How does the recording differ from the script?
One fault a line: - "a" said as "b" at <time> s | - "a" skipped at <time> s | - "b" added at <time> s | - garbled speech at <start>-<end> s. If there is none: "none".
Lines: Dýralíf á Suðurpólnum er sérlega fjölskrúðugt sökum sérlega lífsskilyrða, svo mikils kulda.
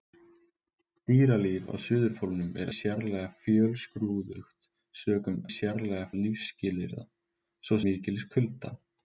none